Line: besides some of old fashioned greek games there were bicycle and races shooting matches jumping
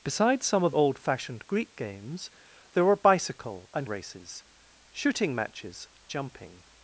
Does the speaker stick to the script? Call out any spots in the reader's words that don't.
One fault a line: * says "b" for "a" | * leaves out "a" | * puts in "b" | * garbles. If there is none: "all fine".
all fine